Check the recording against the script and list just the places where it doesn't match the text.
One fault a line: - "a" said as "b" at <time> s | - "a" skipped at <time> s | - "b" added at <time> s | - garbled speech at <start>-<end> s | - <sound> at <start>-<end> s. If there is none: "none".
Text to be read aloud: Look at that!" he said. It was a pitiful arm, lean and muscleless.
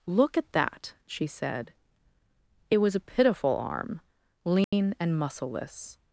- "he" said as "she" at 1.0 s
- dropout at 4.6-4.7 s